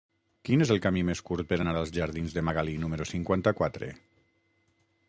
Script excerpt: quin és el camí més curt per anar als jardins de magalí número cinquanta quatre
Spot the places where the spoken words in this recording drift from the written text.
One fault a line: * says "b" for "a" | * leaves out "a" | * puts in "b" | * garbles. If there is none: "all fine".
all fine